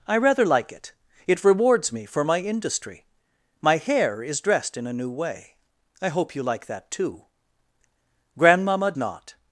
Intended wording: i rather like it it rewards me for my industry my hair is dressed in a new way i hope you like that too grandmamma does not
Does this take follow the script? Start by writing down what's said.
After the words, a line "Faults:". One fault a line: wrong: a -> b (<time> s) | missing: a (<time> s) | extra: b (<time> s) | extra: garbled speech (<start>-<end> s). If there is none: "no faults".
i rather like it it rewards me for my industry my hair is dressed in a new way i hope you like that too grandmamma not
Faults:
missing: does (8.9 s)